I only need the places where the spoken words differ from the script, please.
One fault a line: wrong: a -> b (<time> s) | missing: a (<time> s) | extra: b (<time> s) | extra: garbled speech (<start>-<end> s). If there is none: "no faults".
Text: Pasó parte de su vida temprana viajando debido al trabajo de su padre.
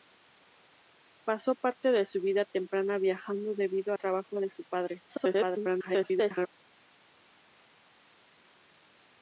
missing: al (3.9 s)
extra: garbled speech (5.1-6.5 s)